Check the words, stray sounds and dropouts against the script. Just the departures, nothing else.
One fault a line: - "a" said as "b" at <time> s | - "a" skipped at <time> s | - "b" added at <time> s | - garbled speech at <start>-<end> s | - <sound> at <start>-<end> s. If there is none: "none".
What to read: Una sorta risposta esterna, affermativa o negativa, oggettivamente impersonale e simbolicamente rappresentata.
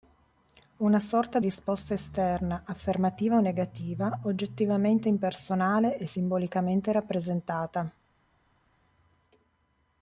none